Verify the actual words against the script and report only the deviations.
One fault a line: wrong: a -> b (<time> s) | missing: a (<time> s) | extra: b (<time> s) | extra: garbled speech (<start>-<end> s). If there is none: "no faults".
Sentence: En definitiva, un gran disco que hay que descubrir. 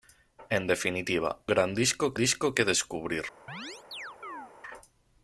missing: un (1.4 s)
wrong: hay -> disco (2.1 s)